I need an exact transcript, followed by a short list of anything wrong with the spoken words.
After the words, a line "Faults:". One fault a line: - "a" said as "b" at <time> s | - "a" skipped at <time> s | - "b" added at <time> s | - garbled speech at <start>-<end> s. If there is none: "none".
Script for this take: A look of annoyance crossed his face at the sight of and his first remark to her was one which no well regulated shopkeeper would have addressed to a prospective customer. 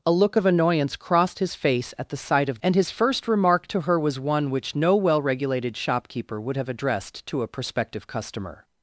A look of annoyance crossed his face at the sight of and his first remark to her was one which no well regulated shopkeeper would have addressed to a prospective customer.
Faults:
none